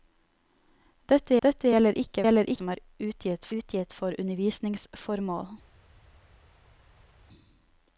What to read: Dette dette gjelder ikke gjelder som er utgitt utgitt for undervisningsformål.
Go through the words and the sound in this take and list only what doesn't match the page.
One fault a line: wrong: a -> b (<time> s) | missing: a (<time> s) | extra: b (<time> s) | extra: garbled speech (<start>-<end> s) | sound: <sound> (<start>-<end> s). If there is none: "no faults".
no faults